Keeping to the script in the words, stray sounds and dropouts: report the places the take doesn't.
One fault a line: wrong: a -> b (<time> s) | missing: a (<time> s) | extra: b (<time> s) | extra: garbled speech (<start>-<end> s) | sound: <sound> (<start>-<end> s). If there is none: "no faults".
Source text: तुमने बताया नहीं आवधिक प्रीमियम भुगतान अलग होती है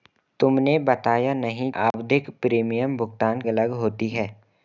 sound: dropout (1.9-1.9 s)